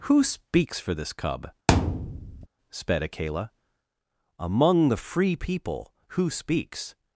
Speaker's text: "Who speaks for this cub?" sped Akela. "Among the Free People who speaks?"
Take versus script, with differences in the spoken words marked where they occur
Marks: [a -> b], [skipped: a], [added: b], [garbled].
"Who speaks for this cub?" sped Akela. "Among the Free People who speaks?"